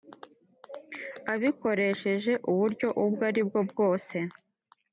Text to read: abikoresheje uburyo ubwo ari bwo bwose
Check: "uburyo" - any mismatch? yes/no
no